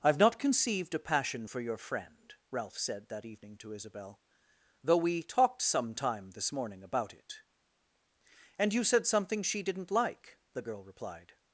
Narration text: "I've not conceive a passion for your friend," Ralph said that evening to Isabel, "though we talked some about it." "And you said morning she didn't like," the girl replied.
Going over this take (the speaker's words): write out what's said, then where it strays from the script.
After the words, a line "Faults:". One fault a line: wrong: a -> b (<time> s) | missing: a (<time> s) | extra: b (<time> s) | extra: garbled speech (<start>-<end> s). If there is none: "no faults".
"I've not conceived a passion for your friend," Ralph said that evening to Isabel, "though we talked some time this morning about it." "And you said something she didn't like," the girl replied.
Faults:
wrong: conceive -> conceived (0.4 s)
extra: time this morning (5.9 s)
wrong: morning -> something (9.1 s)